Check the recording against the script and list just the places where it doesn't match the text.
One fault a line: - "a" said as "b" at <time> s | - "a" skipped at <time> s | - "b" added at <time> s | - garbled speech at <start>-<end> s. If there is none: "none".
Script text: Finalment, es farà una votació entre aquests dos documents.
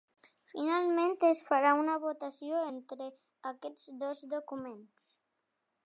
none